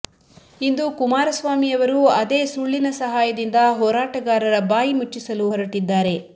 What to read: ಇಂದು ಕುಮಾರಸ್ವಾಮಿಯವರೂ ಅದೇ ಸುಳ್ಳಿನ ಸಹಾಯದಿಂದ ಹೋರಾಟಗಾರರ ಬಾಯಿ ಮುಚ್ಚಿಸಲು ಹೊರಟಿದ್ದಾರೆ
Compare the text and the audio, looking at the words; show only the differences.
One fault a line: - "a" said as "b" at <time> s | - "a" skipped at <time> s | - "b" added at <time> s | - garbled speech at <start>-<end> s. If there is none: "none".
none